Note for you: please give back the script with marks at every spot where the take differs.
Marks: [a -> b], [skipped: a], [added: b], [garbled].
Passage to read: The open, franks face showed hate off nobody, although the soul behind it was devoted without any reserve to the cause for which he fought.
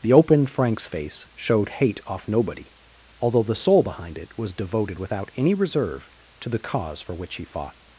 The open, franks face showed hate off nobody, although the soul behind it was devoted without any reserve to the cause for which he fought.